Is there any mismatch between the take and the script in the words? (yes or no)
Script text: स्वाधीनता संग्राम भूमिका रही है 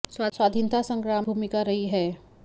no